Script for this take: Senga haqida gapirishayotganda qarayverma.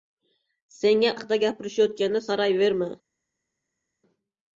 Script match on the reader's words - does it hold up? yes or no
yes